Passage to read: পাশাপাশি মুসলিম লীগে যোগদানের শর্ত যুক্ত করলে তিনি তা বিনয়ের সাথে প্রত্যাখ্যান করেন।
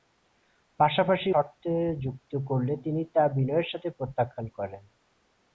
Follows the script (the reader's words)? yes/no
no